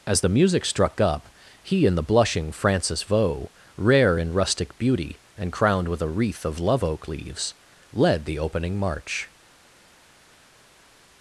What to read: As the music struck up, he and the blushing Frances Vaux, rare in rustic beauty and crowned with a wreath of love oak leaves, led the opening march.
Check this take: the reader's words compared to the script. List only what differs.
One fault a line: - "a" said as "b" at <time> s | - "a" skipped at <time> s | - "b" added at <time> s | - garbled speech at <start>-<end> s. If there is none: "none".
none